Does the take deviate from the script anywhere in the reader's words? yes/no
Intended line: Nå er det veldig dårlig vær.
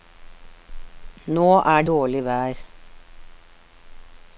yes